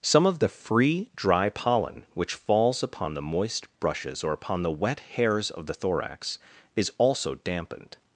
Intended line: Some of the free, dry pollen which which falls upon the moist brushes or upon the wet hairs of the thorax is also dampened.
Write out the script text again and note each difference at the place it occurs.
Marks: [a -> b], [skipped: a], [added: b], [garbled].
Some of the free, dry pollen which [skipped: which] falls upon the moist brushes or upon the wet hairs of the thorax is also dampened.